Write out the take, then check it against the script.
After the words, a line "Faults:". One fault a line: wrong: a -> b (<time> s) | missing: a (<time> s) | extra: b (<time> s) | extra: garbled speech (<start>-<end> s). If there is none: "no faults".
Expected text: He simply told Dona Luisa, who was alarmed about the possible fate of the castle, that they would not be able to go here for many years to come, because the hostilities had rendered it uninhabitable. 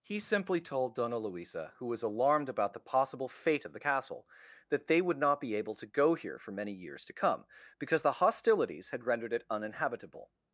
He simply told Dona Luisa, who was alarmed about the possible fate of the castle, that they would not be able to go here for many years to come, because the hostilities had rendered it uninhabitable.
Faults:
no faults